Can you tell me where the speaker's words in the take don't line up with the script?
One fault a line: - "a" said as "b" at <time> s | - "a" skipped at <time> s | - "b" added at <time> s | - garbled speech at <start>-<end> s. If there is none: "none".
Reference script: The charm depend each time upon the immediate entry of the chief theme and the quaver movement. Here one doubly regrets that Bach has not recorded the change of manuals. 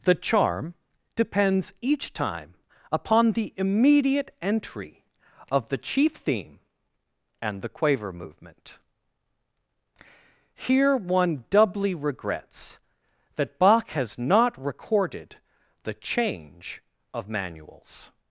- "depend" said as "depends" at 1.1 s